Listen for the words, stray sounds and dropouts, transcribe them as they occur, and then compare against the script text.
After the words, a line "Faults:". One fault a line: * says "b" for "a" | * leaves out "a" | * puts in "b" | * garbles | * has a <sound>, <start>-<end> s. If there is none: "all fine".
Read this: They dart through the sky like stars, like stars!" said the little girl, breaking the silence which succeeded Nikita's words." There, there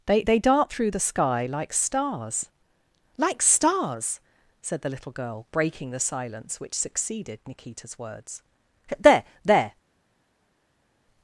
They they dart through the sky like stars, like stars!" said the little girl, breaking the silence which succeeded Nikita's words." There, there
Faults:
* puts in "they"